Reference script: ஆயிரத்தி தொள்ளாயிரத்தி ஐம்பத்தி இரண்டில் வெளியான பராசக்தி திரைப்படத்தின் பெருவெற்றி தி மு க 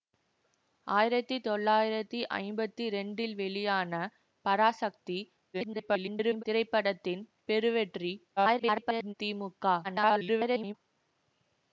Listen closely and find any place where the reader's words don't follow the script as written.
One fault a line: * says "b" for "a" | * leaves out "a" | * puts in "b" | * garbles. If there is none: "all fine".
* garbles
* garbles
* garbles